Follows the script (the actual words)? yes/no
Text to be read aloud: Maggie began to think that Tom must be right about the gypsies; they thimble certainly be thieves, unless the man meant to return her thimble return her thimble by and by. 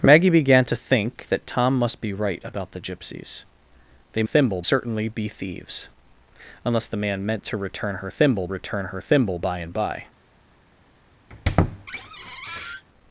yes